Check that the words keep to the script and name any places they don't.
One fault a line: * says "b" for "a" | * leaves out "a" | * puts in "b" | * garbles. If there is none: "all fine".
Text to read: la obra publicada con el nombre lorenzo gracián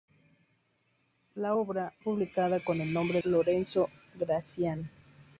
all fine